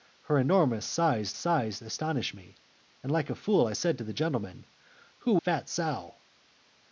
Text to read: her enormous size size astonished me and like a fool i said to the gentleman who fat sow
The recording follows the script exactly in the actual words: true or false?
true